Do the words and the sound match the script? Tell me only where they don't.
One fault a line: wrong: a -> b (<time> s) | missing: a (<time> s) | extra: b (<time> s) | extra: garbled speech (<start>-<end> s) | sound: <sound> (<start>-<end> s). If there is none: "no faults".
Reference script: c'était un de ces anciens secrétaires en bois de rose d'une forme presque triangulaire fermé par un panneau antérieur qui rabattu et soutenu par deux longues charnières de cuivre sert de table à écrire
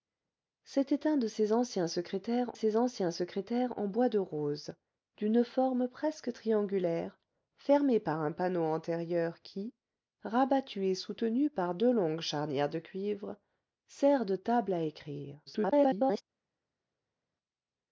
extra: ces anciens secrétaires (2.5 s)
extra: garbled speech (15.5-16.2 s)